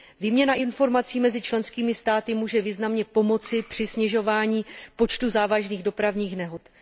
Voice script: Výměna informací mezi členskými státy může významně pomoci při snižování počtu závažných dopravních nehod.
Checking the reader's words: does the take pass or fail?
pass